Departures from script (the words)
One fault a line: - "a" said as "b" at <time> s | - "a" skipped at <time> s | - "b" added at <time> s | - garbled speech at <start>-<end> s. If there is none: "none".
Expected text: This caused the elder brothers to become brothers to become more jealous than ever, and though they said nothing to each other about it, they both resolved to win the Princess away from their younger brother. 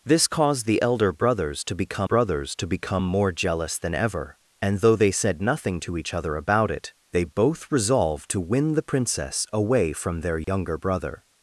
none